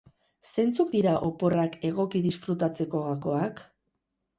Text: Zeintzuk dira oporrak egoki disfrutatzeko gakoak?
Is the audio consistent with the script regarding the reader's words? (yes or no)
yes